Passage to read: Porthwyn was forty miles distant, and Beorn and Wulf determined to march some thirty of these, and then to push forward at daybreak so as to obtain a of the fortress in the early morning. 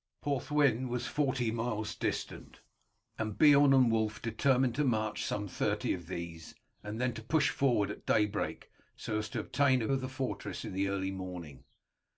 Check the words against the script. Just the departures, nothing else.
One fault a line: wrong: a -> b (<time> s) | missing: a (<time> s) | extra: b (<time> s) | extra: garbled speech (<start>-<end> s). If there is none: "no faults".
no faults